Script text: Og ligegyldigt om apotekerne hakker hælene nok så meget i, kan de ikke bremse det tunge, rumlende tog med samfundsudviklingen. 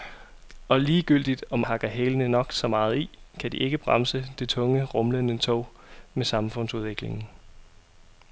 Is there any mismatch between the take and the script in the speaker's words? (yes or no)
yes